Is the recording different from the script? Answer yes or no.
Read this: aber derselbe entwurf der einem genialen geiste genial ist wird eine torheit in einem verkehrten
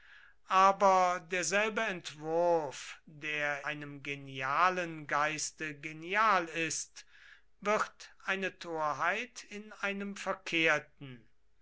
no